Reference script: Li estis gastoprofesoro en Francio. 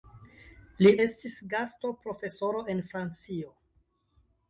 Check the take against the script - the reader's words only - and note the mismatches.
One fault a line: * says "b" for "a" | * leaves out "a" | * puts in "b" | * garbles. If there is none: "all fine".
all fine